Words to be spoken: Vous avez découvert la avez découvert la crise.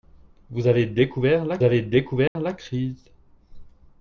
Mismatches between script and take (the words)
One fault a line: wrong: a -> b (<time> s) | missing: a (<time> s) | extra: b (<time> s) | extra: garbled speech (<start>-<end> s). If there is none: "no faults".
no faults